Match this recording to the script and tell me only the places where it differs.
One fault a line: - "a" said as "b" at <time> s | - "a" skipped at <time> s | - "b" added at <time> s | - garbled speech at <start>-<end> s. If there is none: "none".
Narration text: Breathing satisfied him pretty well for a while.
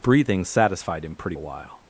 - "well for" skipped at 1.4 s